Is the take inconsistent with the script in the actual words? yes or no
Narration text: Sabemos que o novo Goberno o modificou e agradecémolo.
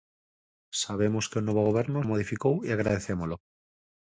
no